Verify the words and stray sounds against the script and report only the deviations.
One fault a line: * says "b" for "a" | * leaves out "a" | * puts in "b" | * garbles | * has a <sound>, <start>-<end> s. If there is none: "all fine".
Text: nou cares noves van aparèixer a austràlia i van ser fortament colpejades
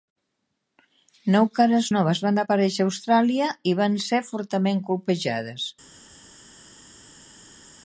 all fine